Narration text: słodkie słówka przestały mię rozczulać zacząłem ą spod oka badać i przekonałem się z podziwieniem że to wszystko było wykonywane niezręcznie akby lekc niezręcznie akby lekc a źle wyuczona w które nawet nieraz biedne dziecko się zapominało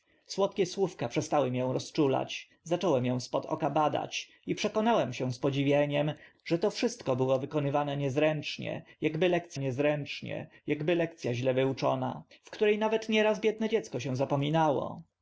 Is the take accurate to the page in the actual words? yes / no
yes